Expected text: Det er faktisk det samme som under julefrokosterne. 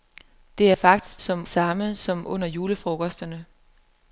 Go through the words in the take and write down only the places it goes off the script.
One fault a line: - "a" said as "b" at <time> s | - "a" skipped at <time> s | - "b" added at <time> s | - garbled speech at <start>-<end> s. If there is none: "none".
- "det" said as "som" at 1.2 s